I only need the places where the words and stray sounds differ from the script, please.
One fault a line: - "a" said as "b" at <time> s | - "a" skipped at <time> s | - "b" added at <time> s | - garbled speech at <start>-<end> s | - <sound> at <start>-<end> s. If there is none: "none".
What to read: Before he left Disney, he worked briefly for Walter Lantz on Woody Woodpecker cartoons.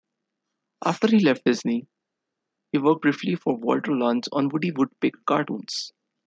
- "Before" said as "After" at 0.8 s